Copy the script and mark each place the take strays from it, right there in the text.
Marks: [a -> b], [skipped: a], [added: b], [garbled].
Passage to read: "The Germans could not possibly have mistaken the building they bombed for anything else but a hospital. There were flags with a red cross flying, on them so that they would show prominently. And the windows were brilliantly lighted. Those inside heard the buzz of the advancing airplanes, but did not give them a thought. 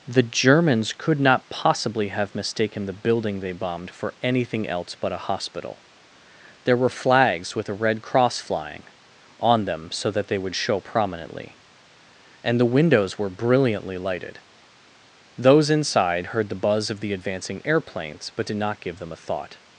"The Germans could not possibly have mistaken the building they bombed for anything else but a hospital. There were flags with a red cross flying, on them so that they would show prominently. And the windows were brilliantly lighted. Those inside heard the buzz of the advancing airplanes, but did not give them a thought.